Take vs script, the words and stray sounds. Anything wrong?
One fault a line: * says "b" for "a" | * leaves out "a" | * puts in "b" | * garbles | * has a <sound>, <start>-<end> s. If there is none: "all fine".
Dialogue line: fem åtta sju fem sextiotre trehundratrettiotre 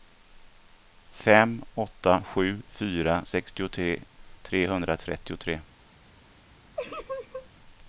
* says "fyra" for "fem"
* has a laugh, 6.8-7.5 s